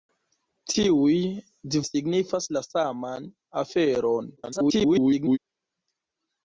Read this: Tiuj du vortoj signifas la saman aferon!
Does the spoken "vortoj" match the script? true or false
false